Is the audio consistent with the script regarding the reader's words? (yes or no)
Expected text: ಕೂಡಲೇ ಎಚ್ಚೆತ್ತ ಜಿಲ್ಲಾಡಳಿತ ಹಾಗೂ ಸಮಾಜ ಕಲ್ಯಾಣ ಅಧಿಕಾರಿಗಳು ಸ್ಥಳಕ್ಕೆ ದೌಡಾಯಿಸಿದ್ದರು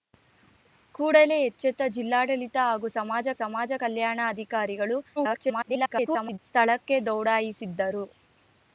no